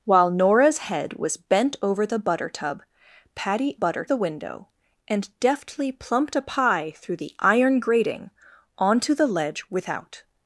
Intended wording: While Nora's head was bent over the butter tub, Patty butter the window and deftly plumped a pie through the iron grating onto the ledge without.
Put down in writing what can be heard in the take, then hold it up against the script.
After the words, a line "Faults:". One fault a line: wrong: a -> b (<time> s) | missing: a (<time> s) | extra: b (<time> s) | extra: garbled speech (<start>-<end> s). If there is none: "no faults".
While Nora's head was bent over the butter tub, Patty butter the window and deftly plumped a pie through the iron grating onto the ledge without.
Faults:
no faults